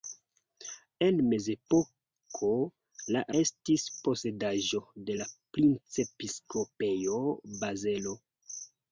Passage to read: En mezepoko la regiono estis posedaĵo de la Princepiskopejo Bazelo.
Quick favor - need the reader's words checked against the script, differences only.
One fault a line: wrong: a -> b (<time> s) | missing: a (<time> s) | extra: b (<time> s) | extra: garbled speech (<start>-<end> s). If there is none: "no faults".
missing: regiono (3.2 s)